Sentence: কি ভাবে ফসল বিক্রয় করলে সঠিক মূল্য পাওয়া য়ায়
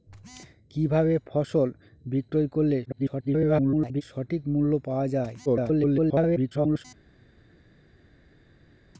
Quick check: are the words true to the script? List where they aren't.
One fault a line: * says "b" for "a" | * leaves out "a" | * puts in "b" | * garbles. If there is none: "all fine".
* garbles
* garbles